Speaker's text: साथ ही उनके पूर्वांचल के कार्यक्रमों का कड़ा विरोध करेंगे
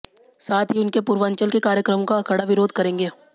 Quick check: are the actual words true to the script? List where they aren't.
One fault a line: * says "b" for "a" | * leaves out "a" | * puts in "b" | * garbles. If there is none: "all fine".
all fine